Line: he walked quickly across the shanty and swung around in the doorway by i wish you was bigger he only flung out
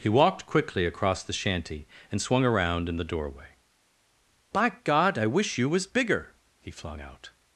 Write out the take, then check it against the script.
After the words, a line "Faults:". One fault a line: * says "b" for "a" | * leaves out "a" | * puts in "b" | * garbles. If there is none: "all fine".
he walked quickly across the shanty and swung around in the doorway by god i wish you was bigger he flung out
Faults:
* puts in "god"
* leaves out "only"